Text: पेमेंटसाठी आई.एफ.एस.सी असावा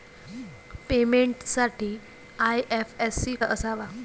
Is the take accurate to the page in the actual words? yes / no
yes